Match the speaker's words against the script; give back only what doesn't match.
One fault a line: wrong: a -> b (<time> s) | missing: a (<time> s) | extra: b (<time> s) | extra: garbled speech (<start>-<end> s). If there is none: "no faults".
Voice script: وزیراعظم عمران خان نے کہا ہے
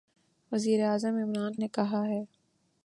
missing: خان (1.5 s)